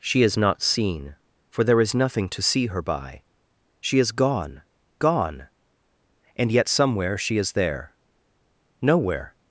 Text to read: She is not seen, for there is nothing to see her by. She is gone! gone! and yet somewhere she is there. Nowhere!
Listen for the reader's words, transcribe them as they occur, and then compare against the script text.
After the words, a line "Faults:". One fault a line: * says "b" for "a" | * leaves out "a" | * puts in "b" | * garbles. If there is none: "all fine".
She is not seen, for there is nothing to see her by. She is gone! gone! and yet somewhere she is there. Nowhere!
Faults:
all fine